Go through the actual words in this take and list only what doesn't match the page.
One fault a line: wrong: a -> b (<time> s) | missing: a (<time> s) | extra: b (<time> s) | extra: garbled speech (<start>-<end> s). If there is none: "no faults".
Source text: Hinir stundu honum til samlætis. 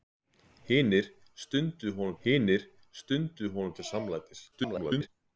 extra: hinir stundu honum (2.2 s)
extra: garbled speech (4.5-5.1 s)